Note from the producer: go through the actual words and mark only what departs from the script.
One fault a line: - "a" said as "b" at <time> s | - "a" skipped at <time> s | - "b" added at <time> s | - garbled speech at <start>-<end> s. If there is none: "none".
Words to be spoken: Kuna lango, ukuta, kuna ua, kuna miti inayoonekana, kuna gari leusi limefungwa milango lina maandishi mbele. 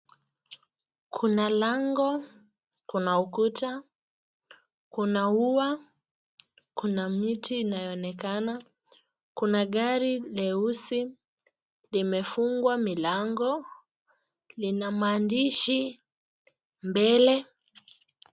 - "kuna" added at 2.9 s